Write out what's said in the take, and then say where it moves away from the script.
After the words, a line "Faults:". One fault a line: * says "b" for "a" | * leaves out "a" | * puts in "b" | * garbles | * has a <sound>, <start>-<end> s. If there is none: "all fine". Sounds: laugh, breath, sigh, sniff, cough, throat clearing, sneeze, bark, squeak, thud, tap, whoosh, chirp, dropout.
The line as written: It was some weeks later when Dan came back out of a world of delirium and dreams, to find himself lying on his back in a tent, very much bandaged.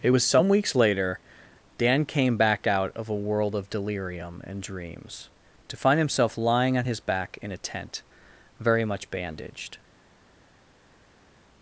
It was some weeks later Dan came back out of a world of delirium and dreams, to find himself lying on his back in a tent, very much bandaged.
Faults:
* leaves out "when"